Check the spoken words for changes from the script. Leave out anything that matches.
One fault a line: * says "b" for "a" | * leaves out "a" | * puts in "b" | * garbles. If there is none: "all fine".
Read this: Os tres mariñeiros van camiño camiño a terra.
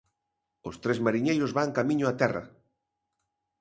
* leaves out "camiño"